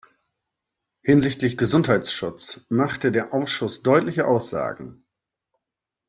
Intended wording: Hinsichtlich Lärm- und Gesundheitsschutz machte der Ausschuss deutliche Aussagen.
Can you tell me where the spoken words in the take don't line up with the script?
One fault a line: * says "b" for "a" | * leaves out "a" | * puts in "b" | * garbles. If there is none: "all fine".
* leaves out "Lärm und"